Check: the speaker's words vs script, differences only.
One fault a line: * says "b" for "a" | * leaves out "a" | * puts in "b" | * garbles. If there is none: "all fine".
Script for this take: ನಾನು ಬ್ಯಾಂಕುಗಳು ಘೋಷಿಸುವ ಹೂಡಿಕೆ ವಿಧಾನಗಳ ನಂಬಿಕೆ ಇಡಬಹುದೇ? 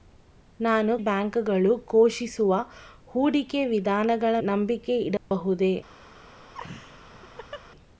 all fine